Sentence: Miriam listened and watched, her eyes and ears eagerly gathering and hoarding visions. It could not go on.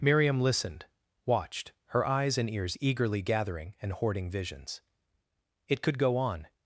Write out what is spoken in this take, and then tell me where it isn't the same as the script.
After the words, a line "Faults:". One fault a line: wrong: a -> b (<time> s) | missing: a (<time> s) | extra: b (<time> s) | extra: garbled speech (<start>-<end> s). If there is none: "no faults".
Miriam listened watched, her eyes and ears eagerly gathering and hoarding visions. It could go on.
Faults:
missing: and (0.8 s)
missing: not (6.0 s)